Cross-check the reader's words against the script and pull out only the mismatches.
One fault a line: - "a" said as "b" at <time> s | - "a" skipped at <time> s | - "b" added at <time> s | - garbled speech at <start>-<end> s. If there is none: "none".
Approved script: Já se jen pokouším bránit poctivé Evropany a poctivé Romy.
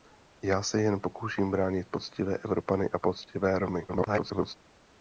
- garbled speech at 3.9-4.6 s